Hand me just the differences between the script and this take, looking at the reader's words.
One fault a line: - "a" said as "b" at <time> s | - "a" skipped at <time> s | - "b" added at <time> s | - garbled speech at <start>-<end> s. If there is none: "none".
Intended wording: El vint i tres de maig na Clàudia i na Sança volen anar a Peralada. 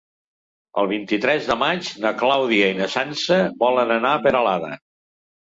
none